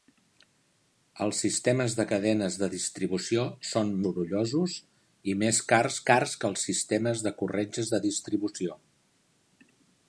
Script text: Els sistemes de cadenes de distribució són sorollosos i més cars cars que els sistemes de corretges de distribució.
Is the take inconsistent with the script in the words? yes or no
no